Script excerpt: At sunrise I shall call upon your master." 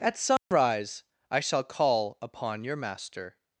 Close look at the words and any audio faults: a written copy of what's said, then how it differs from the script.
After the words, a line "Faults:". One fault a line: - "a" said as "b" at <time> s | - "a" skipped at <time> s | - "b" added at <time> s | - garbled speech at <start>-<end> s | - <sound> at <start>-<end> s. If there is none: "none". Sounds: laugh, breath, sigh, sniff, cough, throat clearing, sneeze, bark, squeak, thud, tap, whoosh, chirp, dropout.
At sunrise I shall call upon your master."
Faults:
- dropout at 0.4-0.5 s